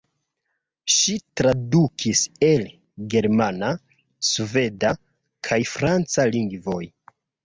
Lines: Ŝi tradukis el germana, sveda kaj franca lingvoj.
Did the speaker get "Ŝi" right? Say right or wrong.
right